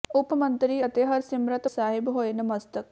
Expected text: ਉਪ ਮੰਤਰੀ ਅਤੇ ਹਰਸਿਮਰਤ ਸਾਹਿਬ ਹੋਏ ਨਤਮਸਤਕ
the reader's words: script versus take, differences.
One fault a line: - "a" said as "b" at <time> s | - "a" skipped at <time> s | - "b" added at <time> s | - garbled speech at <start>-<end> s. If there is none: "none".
none